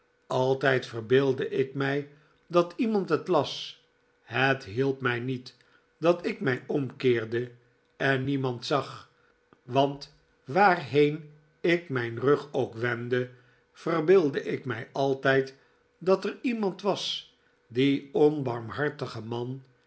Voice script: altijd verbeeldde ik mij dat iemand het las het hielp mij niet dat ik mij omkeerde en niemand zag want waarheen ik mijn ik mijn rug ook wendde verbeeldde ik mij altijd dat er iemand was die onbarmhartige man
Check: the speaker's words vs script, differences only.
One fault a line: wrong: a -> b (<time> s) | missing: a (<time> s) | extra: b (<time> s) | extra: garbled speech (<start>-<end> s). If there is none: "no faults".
missing: ik mijn (12.2 s)